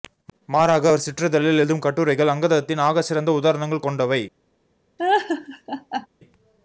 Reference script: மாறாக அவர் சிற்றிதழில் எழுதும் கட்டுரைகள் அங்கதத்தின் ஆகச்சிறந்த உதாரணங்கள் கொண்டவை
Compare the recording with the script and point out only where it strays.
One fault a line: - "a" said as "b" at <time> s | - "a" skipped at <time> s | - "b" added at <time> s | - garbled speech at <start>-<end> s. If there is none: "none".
none